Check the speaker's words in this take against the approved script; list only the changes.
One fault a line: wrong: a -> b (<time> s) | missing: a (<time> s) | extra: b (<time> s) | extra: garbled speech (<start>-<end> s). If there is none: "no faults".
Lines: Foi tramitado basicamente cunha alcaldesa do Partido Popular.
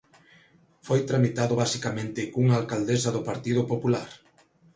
no faults